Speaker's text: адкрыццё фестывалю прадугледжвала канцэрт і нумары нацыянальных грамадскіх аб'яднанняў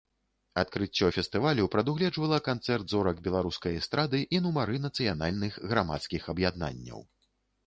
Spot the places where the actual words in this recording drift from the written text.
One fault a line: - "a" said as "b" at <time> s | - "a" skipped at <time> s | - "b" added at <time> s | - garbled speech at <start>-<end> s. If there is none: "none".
- "зорак беларускай эстрады" added at 2.9 s